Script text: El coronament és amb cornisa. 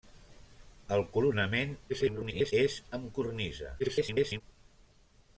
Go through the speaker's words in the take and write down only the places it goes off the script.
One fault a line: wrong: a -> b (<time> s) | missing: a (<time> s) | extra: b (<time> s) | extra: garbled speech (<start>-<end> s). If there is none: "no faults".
extra: garbled speech (1.9-2.5 s)
extra: garbled speech (3.8-4.4 s)